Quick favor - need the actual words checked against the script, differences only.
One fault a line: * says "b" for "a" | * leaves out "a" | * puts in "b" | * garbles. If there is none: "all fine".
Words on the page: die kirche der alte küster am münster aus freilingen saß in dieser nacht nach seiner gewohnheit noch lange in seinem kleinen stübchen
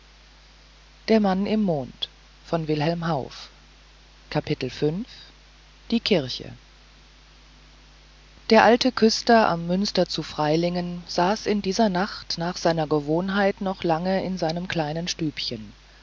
* says "zu" for "aus"